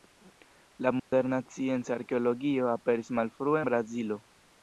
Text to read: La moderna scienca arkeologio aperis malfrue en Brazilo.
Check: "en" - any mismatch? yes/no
yes